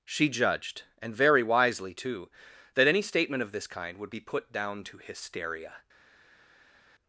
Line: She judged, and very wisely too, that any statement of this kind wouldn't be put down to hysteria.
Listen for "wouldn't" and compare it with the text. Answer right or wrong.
wrong